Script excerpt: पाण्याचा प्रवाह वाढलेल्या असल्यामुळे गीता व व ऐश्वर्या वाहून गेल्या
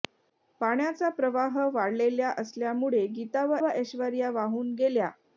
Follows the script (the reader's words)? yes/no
yes